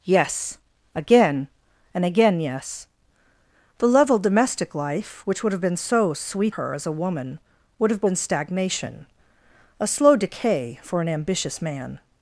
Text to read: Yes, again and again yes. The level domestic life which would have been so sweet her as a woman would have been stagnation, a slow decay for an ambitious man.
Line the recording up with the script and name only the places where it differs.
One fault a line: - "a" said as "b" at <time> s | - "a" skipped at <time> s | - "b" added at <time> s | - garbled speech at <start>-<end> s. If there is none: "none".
none